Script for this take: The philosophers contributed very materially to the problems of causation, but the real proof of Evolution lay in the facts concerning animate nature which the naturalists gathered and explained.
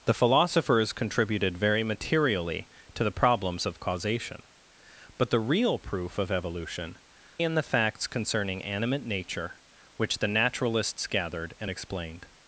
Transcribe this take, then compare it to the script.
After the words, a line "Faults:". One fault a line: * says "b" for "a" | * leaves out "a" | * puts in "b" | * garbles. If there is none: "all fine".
The philosophers contributed very materially to the problems of causation, but the real proof of Evolution in the facts concerning animate nature which the naturalists gathered and explained.
Faults:
* leaves out "lay"